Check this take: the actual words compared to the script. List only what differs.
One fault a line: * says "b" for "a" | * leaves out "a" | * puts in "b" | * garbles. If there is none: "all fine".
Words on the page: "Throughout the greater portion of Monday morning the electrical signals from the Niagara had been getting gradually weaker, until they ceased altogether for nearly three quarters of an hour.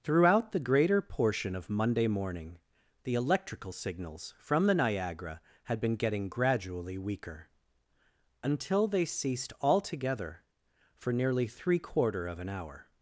* says "quarter" for "quarters"